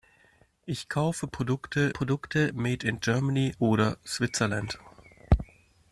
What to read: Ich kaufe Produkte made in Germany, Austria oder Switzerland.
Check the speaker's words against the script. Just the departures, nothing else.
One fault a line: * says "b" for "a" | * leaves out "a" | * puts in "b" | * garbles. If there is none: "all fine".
* puts in "Produkte"
* leaves out "Austria"